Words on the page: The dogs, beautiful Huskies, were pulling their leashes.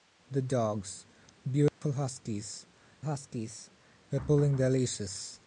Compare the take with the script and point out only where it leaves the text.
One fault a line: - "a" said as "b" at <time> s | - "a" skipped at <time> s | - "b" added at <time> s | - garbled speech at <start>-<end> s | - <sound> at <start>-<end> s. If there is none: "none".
- dropout at 1.7-1.8 s
- "Huskies" added at 3.0 s